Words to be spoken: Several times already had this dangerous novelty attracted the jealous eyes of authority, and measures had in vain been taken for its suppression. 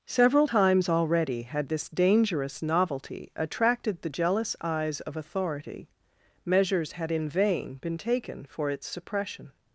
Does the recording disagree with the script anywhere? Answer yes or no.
yes